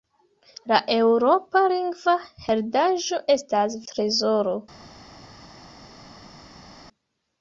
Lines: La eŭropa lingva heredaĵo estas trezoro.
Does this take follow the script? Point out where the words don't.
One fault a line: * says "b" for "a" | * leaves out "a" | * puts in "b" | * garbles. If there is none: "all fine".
all fine